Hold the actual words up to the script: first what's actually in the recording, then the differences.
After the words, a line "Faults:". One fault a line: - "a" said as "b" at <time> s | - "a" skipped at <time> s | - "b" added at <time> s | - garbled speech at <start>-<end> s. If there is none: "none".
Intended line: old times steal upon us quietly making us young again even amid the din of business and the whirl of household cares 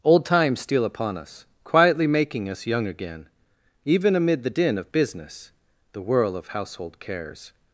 old times steal upon us quietly making us young again even amid the din of business the whirl of household cares
Faults:
- "and" skipped at 5.5 s